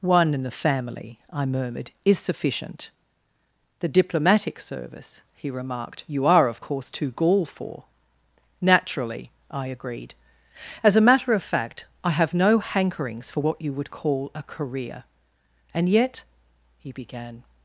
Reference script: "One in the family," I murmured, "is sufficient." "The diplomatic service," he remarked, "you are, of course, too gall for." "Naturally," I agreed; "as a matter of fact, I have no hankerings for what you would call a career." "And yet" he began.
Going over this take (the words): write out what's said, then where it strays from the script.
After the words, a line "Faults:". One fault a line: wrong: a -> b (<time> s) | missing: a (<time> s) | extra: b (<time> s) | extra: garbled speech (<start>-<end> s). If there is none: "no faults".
"One in the family," I murmured, "is sufficient." "The diplomatic service," he remarked, "you are, of course, too gall for." "Naturally," I agreed; "as a matter of fact, I have no hankerings for what you would call a career." "And yet" he began.
Faults:
no faults